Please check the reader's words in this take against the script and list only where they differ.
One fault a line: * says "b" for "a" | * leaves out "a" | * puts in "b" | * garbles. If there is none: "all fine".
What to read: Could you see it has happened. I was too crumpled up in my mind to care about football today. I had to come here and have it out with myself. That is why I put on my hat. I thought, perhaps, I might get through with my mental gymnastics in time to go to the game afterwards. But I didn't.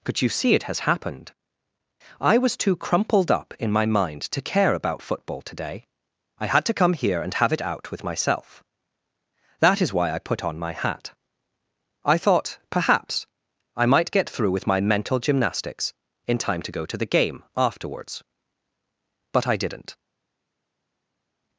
all fine